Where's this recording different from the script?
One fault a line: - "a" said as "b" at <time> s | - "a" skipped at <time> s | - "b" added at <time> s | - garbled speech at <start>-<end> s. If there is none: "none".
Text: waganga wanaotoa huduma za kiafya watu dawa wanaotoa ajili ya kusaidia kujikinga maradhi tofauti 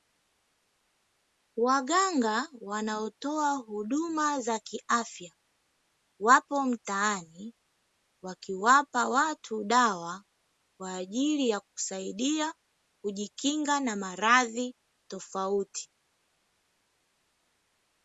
- "wapo mtaani wakiwapa" added at 6.2 s
- "wanaotoa" said as "kwa" at 10.8 s
- "na" added at 13.8 s